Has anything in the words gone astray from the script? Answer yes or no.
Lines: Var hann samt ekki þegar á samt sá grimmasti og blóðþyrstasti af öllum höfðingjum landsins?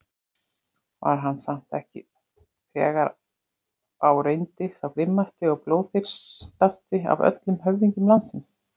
yes